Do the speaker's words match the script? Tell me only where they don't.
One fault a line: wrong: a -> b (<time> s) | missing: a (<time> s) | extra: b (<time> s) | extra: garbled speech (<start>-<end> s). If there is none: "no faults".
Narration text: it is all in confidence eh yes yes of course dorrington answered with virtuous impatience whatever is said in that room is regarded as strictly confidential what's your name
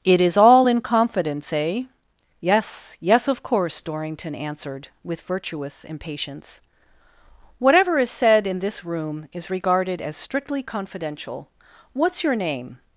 wrong: that -> this (8.6 s)